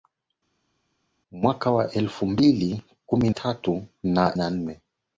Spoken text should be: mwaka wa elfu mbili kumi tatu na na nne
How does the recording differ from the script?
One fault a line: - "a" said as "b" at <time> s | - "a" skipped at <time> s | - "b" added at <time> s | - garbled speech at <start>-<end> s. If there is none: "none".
none